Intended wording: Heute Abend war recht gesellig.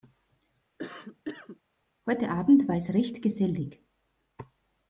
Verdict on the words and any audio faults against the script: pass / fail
fail